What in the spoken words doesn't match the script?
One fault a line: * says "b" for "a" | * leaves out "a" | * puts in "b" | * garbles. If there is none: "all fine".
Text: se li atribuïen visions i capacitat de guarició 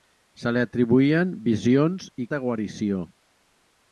* leaves out "capacitat"